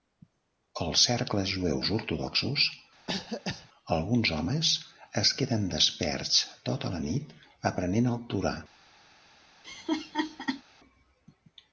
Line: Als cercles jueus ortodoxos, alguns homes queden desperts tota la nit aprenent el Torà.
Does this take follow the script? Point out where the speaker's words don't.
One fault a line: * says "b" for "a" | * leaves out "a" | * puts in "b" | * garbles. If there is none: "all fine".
* puts in "es"